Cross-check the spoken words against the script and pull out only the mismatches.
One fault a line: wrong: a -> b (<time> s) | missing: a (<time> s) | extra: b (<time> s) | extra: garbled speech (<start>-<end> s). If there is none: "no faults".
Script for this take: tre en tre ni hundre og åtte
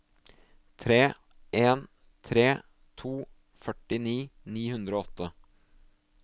extra: to førtini (3.0 s)